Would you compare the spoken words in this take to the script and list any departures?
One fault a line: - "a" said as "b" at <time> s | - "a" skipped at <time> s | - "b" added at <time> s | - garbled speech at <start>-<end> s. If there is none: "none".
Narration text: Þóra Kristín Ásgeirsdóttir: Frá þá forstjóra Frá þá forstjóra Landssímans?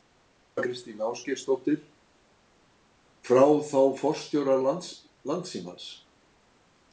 - "Frá þá forstjóra" skipped at 4.6 s